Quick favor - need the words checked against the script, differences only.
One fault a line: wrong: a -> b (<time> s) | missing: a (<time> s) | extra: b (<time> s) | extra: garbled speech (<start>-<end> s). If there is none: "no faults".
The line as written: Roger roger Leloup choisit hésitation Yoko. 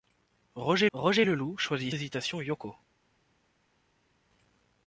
no faults